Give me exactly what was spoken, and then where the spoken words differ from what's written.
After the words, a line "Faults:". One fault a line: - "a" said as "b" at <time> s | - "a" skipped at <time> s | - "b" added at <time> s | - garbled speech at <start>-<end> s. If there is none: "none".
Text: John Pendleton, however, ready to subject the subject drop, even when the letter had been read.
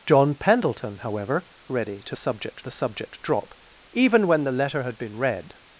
John Pendleton, however, ready to subject the subject drop, even when the letter had been read.
Faults:
none